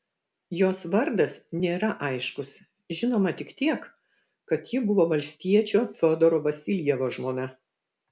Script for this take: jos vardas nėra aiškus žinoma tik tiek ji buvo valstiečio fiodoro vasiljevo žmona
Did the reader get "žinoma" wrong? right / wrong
right